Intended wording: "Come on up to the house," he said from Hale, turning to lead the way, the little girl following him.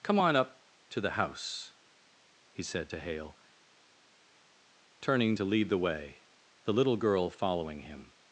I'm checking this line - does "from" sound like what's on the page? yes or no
no